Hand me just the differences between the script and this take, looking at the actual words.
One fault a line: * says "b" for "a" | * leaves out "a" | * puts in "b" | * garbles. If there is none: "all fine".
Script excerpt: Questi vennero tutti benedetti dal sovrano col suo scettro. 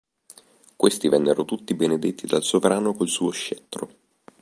all fine